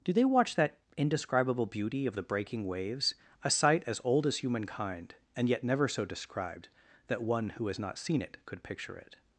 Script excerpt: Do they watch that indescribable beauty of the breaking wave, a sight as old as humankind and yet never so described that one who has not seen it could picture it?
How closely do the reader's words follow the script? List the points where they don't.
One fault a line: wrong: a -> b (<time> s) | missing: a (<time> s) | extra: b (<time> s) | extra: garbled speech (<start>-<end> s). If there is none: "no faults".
wrong: wave -> waves (2.6 s)